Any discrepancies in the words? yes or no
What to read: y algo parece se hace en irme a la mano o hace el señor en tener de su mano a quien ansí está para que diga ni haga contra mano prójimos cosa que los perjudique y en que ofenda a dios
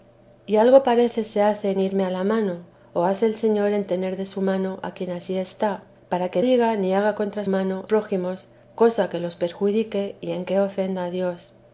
no